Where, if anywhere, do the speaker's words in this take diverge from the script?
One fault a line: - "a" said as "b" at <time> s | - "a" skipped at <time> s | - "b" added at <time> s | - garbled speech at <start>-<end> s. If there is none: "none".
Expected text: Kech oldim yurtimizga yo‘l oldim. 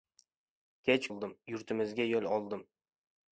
none